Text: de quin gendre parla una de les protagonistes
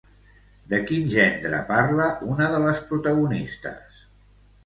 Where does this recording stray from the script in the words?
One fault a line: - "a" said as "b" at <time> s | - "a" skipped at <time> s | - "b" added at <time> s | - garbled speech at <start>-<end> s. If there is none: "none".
none